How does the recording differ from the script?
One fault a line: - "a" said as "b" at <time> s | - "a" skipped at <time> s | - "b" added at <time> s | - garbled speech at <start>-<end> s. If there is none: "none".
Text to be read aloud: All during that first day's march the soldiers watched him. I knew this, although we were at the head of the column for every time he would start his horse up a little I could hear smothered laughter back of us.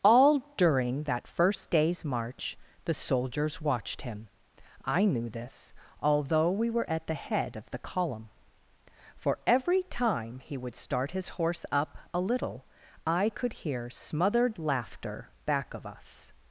none